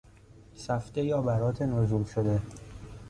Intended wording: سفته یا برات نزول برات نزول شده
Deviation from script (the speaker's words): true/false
true